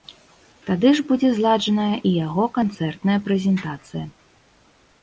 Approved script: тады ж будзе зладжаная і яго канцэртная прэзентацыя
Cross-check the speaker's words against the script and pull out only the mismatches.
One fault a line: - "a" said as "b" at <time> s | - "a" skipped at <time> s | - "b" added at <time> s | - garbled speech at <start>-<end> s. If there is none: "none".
none